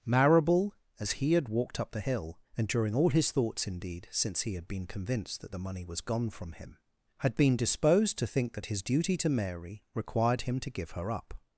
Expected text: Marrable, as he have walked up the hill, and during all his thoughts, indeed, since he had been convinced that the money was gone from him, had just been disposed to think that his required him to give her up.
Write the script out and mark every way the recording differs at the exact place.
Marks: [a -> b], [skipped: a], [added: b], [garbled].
Marrable, as he [have -> had] walked up the hill, and during all his thoughts, indeed, since he had been convinced that the money was gone from him, had [skipped: just] been disposed to think that his [added: duty to Mary] required him to give her up.